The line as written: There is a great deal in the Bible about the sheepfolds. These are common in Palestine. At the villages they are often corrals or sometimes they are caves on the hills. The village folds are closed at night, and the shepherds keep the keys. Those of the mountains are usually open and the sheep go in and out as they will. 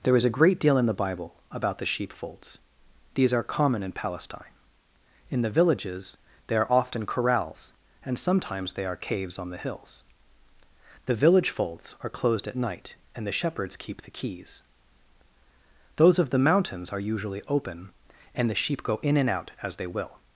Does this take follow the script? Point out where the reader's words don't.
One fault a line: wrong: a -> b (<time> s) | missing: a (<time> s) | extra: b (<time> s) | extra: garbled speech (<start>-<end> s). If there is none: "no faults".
wrong: At -> In (5.3 s)
wrong: or -> and (8.0 s)